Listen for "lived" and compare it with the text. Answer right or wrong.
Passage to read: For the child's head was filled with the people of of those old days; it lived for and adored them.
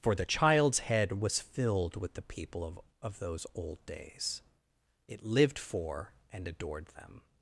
right